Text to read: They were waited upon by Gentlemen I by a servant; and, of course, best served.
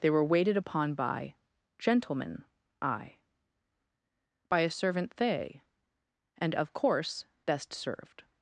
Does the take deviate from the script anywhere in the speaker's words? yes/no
yes